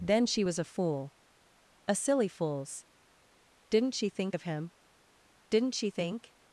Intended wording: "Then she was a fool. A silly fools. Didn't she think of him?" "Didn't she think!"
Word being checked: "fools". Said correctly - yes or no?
yes